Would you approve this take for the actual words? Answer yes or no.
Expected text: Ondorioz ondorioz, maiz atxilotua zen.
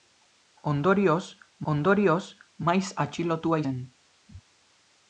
yes